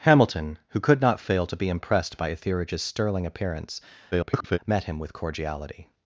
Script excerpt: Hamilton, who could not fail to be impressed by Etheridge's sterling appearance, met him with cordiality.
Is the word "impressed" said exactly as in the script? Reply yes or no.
yes